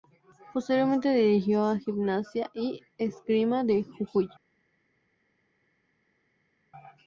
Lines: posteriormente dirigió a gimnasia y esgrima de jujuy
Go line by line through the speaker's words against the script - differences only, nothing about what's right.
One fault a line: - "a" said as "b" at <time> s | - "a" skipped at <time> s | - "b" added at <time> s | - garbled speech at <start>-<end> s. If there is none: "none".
none